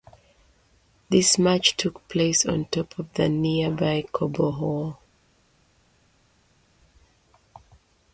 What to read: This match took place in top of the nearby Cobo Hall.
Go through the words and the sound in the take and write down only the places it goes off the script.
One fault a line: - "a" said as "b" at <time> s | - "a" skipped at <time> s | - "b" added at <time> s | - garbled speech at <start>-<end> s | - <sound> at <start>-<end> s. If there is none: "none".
- "in" said as "on" at 2.4 s